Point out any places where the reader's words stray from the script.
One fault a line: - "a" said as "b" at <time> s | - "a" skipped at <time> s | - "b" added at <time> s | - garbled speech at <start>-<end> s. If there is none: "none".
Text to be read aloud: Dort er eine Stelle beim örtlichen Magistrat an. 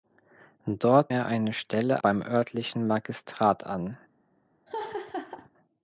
none